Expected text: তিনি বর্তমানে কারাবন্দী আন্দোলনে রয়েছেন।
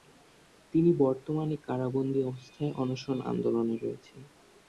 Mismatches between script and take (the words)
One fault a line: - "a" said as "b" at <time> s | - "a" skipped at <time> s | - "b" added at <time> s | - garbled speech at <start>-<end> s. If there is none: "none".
- "অবস্থায় অনশন" added at 2.2 s